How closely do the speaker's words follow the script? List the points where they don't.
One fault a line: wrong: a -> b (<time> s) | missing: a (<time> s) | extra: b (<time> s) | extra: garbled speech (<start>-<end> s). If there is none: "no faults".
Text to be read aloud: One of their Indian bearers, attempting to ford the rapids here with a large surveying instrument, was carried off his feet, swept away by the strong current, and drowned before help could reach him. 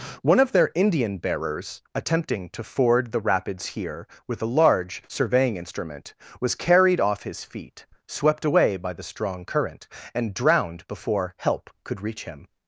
no faults